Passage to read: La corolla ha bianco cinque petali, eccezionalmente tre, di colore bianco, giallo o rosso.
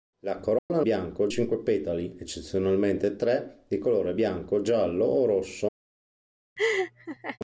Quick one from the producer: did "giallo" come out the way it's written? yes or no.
yes